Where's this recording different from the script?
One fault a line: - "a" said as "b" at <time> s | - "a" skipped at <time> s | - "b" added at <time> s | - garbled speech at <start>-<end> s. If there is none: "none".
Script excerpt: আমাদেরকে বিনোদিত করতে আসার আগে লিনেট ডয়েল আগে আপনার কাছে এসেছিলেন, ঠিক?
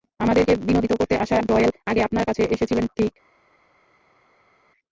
- "আগে লিনেট" skipped at 1.4 s